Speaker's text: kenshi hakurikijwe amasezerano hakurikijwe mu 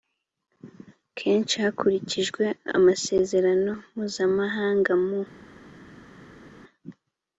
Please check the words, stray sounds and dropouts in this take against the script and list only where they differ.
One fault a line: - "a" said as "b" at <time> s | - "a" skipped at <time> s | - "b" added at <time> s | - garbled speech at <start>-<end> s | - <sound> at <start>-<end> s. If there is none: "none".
- "hakurikijwe" said as "mpuzamahanga" at 3.9 s